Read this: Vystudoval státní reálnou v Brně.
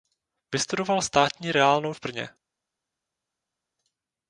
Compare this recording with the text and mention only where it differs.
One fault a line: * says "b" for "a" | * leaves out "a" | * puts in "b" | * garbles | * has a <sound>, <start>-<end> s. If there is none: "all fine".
all fine